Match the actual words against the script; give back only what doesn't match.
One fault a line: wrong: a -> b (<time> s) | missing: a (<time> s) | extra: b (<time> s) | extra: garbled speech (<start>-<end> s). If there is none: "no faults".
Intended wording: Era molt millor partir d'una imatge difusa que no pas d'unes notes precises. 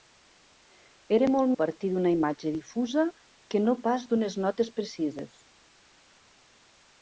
missing: millor (1.5 s)